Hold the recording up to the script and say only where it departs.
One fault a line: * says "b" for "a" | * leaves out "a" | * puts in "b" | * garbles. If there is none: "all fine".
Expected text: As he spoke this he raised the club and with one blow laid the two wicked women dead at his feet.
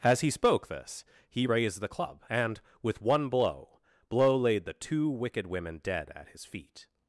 * puts in "blow"